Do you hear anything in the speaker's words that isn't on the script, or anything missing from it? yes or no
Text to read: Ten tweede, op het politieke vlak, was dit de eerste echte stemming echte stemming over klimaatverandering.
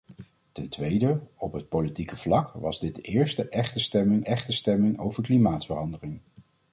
no